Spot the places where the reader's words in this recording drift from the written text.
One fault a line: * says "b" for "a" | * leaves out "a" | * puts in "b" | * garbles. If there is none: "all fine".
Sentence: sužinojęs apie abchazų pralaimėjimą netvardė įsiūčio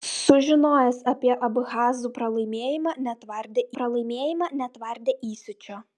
* puts in "pralaimėjimą netvardė"